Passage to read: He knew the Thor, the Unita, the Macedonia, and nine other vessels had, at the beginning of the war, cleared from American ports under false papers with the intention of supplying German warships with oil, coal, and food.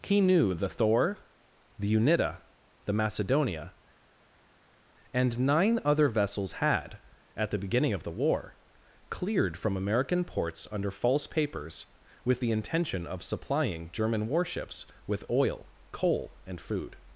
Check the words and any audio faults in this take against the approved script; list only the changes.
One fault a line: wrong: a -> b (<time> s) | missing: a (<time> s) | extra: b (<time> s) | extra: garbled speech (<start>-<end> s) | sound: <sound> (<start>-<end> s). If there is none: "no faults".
no faults